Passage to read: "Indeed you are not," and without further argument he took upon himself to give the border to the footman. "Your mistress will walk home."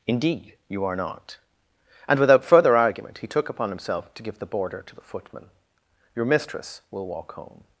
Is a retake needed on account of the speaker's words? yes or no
no